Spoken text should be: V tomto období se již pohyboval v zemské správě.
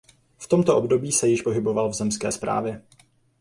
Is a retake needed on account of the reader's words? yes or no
no